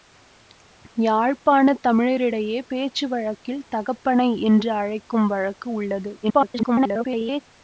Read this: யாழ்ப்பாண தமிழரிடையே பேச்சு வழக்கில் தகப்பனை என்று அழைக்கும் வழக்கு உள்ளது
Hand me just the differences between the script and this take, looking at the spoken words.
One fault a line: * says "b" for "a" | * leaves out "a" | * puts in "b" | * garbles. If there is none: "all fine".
* garbles